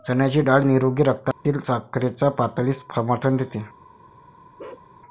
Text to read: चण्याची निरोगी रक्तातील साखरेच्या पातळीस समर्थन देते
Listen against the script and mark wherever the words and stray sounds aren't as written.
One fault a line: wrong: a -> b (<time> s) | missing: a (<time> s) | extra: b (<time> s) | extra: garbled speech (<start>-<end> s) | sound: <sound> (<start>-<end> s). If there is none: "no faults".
extra: डाळ (0.4 s)
sound: dropout (1.3-1.5 s)
sound: bark (4.6-4.9 s)